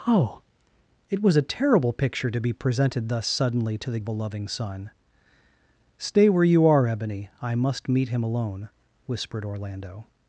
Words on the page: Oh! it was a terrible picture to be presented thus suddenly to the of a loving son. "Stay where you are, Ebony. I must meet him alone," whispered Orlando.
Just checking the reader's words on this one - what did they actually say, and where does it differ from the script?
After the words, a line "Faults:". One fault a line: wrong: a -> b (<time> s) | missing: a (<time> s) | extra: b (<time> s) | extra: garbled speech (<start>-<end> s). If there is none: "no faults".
Oh! it was a terrible picture to be presented thus suddenly to the of a loving son. "Stay where you are, Ebony. I must meet him alone," whispered Orlando.
Faults:
no faults